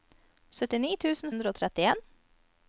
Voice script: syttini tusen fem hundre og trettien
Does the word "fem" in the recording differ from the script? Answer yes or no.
yes